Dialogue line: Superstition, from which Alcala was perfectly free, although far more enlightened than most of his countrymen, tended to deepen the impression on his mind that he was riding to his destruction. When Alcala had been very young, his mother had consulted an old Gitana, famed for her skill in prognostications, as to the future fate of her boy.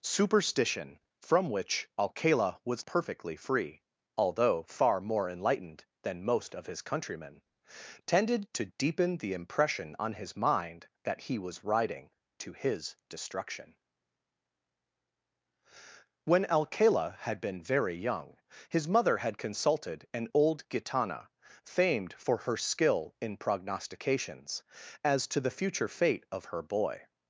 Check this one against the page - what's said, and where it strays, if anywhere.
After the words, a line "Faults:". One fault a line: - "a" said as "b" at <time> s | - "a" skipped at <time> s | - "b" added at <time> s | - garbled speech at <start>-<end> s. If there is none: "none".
Superstition, from which Alcala was perfectly free, although far more enlightened than most of his countrymen, tended to deepen the impression on his mind that he was riding to his destruction. When Alcala had been very young, his mother had consulted an old Gitana, famed for her skill in prognostications, as to the future fate of her boy.
Faults:
none